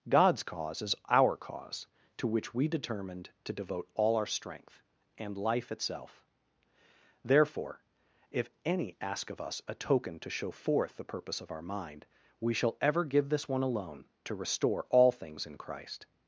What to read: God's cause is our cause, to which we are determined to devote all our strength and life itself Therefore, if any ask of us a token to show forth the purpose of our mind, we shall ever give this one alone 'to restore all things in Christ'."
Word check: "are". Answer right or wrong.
wrong